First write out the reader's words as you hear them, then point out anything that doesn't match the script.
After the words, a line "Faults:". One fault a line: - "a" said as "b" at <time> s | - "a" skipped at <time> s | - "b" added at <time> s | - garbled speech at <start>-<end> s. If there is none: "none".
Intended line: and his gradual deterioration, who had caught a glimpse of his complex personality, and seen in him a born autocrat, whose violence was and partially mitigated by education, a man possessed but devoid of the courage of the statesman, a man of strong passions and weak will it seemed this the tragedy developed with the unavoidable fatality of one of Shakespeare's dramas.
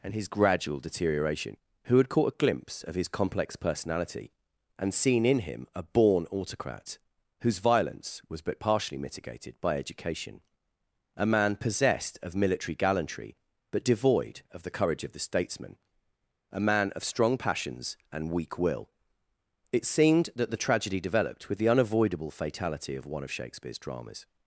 and his gradual deterioration, who had caught a glimpse of his complex personality, and seen in him a born autocrat, whose violence was but partially mitigated by education, a man possessed of military gallantry, but devoid of the courage of the statesman, a man of strong passions and weak will it seemed that the tragedy developed with the unavoidable fatality of one of Shakespeare's dramas.
Faults:
- "and" said as "but" at 8.4 s
- "of military gallantry" added at 12.2 s
- "this" said as "that" at 20.3 s